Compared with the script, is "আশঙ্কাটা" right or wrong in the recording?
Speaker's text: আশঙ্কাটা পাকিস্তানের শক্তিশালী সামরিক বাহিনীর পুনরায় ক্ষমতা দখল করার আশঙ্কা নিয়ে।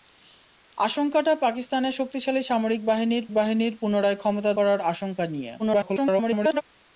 right